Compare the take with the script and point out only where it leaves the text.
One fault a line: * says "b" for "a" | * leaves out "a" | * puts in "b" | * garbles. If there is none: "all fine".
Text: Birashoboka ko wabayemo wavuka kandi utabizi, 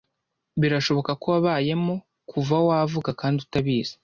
* puts in "kuva"